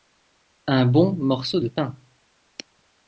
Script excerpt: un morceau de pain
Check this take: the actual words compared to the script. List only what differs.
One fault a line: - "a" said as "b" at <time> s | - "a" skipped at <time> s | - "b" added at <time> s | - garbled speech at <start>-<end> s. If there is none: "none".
- "bon" added at 0.9 s